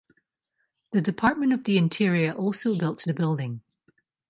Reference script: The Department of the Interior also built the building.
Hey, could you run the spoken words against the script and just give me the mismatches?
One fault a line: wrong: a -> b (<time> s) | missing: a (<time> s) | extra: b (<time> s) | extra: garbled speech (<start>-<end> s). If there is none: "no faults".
no faults